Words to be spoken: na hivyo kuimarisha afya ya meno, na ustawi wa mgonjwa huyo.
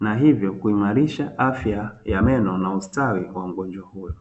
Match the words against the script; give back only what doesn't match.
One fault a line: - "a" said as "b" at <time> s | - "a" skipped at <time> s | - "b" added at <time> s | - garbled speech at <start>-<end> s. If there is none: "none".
none